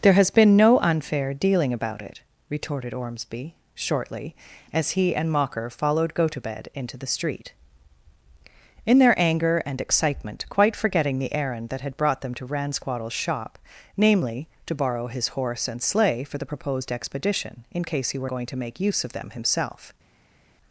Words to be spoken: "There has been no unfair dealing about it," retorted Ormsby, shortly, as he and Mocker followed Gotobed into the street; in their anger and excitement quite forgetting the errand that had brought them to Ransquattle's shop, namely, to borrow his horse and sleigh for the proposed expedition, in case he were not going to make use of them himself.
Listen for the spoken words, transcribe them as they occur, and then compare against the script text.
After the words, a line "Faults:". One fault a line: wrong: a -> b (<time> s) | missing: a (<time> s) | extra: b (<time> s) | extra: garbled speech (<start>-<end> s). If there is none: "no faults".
"There has been no unfair dealing about it," retorted Ormsby, shortly, as he and Mocker followed Gotobed into the street; in their anger and excitement quite forgetting the errand that had brought them to Ransquattle's shop, namely, to borrow his horse and sleigh for the proposed expedition, in case he were going to make use of them himself.
Faults:
missing: not (18.3 s)